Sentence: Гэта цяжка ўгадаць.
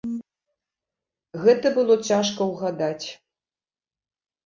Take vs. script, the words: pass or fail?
fail